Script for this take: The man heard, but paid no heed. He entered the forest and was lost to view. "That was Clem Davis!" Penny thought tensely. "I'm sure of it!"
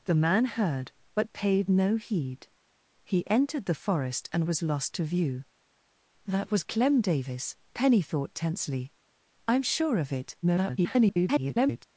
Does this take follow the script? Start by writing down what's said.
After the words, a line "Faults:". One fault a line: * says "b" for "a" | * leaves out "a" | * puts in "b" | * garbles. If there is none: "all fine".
The man heard, but paid no heed. He entered the forest and was lost to view. "That was Clem Davis!" Penny thought tensely. "I'm sure of it!" [garbled]
Faults:
* garbles